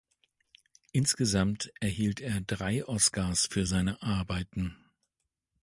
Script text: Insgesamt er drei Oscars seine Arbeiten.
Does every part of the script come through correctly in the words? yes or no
no